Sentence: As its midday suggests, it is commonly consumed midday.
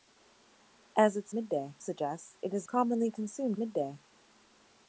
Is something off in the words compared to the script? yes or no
no